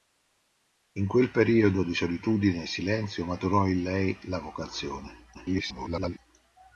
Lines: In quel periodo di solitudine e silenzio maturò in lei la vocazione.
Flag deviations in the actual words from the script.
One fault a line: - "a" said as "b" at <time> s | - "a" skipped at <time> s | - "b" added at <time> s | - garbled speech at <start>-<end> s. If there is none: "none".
- garbled speech at 5.3-6.2 s